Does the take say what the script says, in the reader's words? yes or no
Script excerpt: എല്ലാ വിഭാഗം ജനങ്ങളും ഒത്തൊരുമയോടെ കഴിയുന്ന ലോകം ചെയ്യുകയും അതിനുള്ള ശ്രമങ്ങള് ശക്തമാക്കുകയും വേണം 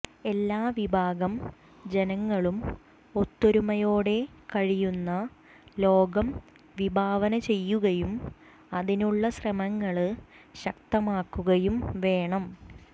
no